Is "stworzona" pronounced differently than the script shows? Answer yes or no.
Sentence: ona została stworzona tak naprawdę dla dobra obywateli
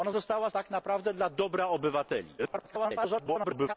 yes